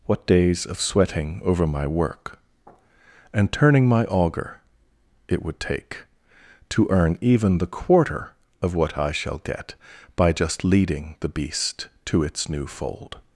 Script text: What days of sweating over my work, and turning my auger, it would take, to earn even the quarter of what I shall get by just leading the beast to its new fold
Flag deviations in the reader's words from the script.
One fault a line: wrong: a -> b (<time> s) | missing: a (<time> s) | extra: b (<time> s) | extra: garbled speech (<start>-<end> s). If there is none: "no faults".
no faults